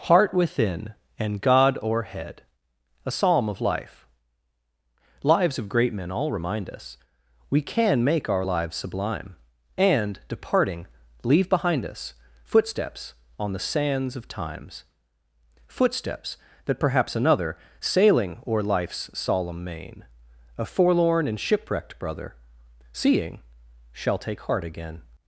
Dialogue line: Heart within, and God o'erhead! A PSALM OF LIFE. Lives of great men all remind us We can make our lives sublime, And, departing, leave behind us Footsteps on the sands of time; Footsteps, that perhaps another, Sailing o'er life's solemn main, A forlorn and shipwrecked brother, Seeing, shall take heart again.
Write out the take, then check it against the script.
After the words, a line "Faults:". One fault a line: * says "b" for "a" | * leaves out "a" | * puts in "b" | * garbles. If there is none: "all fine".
Heart within, and God o'erhead! A PSALM OF LIFE. Lives of great men all remind us We can make our lives sublime, And, departing, leave behind us Footsteps on the sands of times; Footsteps, that perhaps another, Sailing o'er life's solemn main, A forlorn and shipwrecked brother, Seeing, shall take heart again.
Faults:
* says "times" for "time"